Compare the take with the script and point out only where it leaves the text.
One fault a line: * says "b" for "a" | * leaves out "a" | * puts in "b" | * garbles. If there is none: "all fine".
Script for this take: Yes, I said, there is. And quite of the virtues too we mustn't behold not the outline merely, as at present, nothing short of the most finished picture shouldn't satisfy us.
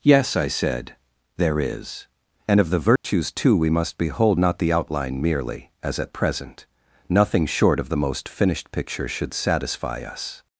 * leaves out "quite"
* says "must" for "mustn't"
* says "should" for "shouldn't"